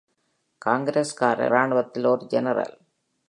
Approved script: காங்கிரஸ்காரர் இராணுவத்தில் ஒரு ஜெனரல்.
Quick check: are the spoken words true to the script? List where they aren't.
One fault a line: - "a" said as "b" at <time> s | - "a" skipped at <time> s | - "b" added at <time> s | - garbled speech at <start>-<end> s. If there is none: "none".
none